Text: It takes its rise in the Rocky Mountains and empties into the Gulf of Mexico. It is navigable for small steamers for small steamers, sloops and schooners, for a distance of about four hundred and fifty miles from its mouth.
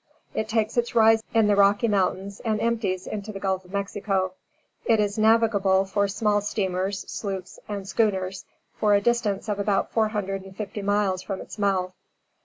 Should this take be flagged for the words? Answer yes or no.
yes